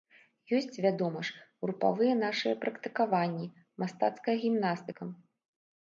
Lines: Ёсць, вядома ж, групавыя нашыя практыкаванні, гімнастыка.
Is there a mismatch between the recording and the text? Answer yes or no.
yes